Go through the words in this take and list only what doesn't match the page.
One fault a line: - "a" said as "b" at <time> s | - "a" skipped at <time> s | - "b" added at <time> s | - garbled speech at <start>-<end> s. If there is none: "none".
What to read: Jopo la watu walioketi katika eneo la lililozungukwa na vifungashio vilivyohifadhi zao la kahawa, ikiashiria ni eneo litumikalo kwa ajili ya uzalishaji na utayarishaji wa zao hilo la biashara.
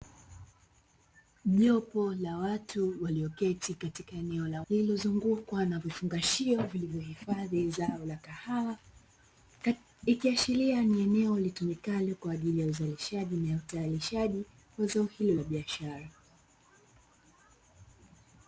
none